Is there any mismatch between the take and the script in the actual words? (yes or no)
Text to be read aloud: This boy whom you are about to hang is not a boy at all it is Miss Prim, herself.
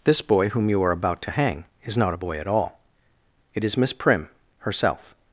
no